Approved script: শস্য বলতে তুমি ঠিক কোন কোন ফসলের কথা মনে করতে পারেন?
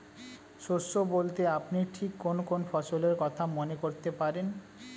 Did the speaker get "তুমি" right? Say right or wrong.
wrong